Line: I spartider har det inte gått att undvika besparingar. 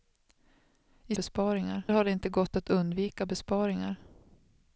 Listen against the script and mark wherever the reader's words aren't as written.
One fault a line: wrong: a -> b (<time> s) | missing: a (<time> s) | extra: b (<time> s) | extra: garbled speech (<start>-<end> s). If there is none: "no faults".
wrong: spartider -> besparingar (1.1 s)